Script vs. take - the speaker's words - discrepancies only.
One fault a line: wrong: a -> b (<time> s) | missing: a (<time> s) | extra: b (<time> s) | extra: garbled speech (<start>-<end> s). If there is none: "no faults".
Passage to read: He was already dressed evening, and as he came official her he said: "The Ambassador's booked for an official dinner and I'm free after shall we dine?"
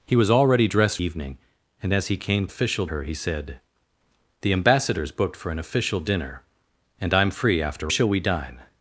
no faults